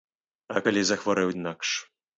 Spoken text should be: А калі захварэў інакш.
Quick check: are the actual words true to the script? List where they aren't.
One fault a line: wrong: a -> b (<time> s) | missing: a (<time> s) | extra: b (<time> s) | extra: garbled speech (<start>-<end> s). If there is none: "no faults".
no faults